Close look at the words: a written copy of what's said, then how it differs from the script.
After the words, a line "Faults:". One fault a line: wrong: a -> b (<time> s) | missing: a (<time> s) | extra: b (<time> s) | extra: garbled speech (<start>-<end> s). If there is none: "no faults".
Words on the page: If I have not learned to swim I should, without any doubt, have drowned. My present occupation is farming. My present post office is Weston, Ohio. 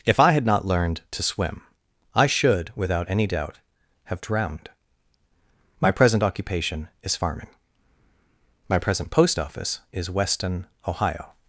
If I had not learned to swim I should, without any doubt, have drowned. My present occupation is farming. My present post office is Weston, Ohio.
Faults:
wrong: have -> had (0.3 s)